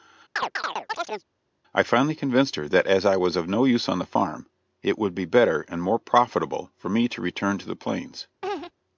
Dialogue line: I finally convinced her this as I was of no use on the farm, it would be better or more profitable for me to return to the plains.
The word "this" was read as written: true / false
false